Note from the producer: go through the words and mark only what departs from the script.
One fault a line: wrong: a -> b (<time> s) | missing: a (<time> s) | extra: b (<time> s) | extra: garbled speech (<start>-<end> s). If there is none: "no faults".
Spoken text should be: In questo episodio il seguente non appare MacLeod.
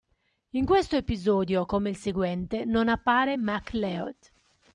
extra: come (1.6 s)